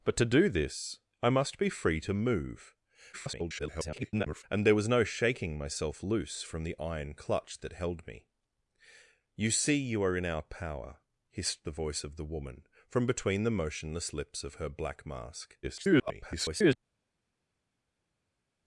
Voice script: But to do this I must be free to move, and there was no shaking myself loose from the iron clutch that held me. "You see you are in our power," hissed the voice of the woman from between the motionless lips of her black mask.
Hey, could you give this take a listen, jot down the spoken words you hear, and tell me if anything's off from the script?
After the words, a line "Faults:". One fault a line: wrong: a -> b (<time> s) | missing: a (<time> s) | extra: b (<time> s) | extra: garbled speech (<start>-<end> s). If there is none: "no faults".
But to do this I must be free to move, [garbled] and there was no shaking myself loose from the iron clutch that held me. "You see you are in our power," hissed the voice of the woman from between the motionless lips of her black mask. [garbled]
Faults:
extra: garbled speech (3.1-4.4 s)
extra: garbled speech (15.6-16.8 s)